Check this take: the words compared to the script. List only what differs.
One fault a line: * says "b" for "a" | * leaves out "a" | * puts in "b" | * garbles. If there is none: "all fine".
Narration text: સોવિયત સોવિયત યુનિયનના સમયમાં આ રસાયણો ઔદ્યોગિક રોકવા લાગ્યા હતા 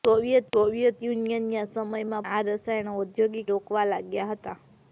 all fine